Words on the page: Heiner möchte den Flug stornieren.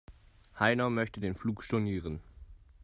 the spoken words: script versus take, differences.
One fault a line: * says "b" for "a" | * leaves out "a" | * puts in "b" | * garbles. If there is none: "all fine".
all fine